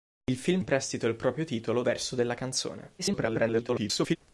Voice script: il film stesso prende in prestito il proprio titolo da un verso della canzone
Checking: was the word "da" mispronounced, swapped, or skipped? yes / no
yes